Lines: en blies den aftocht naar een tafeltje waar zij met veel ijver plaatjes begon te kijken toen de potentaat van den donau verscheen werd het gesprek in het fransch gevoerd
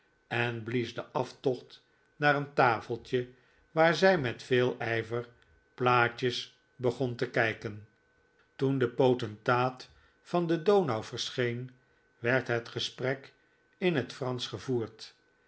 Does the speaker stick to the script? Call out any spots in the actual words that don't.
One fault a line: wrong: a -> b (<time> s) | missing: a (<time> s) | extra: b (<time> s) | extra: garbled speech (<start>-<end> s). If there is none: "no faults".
no faults